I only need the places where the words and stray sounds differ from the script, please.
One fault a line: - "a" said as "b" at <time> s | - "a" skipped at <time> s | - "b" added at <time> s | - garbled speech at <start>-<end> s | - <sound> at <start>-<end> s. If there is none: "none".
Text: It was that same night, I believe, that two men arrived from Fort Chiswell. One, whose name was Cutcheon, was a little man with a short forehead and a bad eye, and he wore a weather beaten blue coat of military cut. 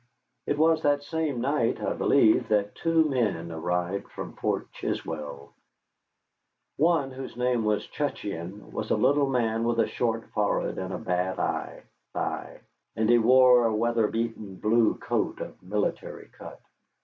- "eye" added at 12.1 s